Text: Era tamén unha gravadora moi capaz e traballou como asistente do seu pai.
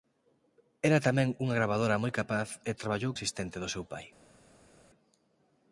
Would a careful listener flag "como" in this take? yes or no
yes